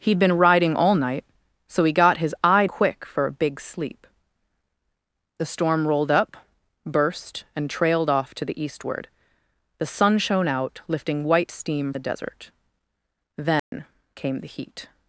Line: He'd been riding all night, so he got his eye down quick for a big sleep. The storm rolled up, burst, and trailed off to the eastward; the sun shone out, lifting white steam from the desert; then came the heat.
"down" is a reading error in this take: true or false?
true